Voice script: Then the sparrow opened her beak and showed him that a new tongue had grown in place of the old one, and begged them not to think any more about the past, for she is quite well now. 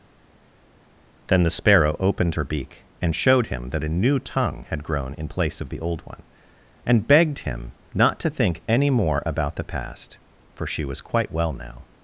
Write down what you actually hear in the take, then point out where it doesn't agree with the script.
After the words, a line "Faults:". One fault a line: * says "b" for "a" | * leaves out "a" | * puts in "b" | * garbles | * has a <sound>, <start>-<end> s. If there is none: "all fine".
Then the sparrow opened her beak and showed him that a new tongue had grown in place of the old one, and begged him not to think any more about the past, for she was quite well now.
Faults:
* says "him" for "them"
* says "was" for "is"